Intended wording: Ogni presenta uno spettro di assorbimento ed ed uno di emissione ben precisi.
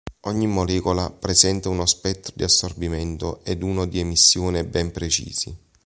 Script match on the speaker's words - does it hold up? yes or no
no